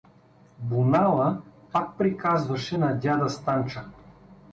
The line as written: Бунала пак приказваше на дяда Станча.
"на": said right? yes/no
yes